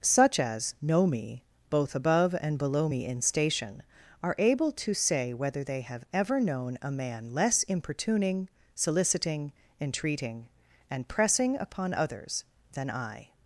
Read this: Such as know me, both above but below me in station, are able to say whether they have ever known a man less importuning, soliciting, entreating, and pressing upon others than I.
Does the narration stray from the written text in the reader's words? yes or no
yes